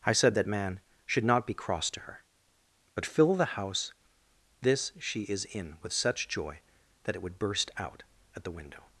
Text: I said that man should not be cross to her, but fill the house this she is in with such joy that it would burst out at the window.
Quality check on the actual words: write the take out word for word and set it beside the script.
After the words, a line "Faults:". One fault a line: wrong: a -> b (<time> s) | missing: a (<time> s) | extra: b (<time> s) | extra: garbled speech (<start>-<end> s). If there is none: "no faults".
I said that man should not be cross to her, but fill the house this she is in with such joy that it would burst out at the window.
Faults:
no faults